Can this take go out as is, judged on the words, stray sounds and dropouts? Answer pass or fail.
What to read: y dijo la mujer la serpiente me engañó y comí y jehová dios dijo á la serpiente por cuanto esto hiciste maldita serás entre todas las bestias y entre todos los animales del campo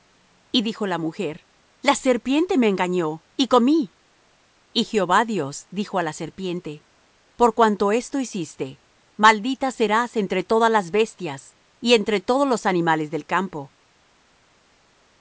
pass